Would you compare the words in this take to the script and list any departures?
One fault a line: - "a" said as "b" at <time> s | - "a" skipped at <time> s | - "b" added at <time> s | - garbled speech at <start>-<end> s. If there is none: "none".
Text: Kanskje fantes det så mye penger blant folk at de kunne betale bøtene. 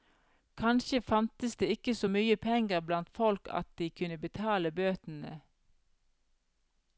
- "ikke" added at 1.7 s